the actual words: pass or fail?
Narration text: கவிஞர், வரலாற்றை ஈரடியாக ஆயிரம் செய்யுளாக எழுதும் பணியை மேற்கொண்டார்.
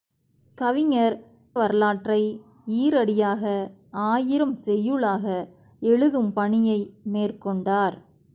pass